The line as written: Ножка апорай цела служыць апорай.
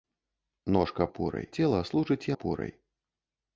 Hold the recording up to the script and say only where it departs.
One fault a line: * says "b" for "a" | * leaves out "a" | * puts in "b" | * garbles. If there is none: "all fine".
all fine